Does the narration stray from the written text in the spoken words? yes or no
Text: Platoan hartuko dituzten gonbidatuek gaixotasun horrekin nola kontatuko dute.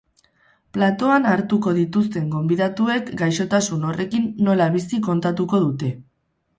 yes